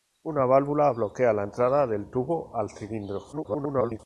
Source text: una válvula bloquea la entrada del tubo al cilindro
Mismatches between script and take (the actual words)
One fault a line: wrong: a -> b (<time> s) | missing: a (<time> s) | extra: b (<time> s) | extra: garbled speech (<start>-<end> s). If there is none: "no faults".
extra: garbled speech (3.3-4.0 s)